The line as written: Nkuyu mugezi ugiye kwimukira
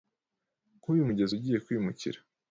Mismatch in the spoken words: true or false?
false